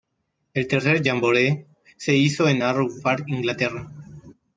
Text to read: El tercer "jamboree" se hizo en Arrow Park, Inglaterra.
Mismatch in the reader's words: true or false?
false